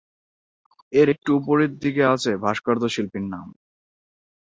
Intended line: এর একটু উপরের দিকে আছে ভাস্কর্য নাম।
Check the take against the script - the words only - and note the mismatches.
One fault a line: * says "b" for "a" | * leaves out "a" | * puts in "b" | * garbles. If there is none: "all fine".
* puts in "শিল্পীর"